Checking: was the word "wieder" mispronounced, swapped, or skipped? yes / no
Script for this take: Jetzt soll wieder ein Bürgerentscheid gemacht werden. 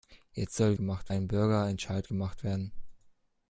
yes